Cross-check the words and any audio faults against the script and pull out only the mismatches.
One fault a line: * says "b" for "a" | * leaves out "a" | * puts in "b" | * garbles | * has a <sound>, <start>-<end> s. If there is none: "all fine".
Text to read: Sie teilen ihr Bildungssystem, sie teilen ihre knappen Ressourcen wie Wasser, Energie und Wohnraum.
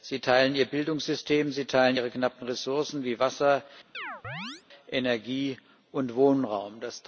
* has a chirp, 3.9-4.6 s